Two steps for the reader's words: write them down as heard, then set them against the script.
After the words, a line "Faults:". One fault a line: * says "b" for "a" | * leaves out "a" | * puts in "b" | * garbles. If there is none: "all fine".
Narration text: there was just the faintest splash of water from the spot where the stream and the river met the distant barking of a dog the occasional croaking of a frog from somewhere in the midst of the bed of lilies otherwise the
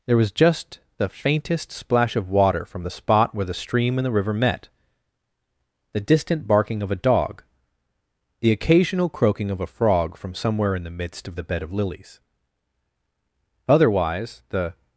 there was just the faintest splash of water from the spot where the stream and the river met the distant barking of a dog the occasional croaking of a frog from somewhere in the midst of the bed of lilies otherwise the
Faults:
all fine